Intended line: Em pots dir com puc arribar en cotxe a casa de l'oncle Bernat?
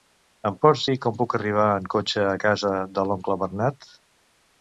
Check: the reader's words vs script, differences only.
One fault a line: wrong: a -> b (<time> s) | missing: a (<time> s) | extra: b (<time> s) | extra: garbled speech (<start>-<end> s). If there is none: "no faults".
no faults